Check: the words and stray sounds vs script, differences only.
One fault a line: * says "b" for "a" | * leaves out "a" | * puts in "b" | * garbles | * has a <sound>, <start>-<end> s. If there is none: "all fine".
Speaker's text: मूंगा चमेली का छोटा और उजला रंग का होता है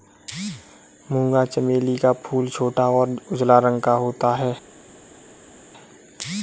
* puts in "फूल"